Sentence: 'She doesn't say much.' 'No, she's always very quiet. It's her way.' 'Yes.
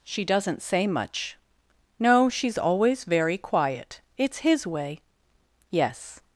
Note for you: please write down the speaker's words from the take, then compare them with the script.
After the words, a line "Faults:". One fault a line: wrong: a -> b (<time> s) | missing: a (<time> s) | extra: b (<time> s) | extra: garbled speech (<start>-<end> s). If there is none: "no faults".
'She doesn't say much.' 'No, she's always very quiet. It's his way.' 'Yes.
Faults:
wrong: her -> his (4.4 s)